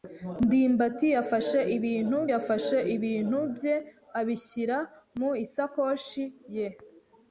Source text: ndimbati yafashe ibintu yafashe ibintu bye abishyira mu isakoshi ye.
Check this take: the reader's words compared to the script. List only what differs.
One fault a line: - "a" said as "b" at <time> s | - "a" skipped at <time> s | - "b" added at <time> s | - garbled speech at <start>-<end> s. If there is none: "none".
none